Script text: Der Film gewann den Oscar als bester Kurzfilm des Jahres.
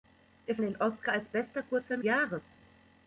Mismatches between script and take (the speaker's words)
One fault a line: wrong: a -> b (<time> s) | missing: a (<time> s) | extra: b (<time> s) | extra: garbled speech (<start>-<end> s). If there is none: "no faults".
missing: Film gewann (0.6 s)
missing: des (2.0 s)